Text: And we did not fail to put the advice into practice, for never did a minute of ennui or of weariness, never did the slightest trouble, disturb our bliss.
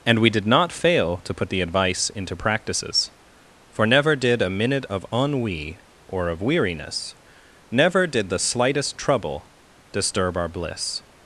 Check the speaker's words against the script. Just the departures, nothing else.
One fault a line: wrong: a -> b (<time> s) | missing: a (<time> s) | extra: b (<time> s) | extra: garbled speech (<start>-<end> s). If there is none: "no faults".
wrong: practice -> practices (2.4 s)